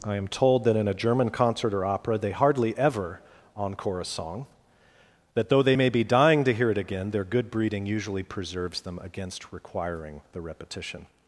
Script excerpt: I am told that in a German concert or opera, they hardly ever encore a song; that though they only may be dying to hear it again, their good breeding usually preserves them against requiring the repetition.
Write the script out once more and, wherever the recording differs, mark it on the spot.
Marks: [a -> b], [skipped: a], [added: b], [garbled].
I am told that in a German concert or opera, they hardly ever encore a song; that though they [skipped: only] may be dying to hear it again, their good breeding usually preserves them against requiring the repetition.